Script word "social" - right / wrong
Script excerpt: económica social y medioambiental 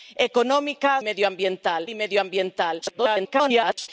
wrong